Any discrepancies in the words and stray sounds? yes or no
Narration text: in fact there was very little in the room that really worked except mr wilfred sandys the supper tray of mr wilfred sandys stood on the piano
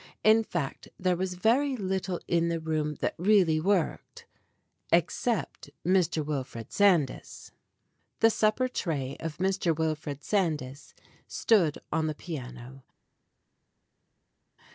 no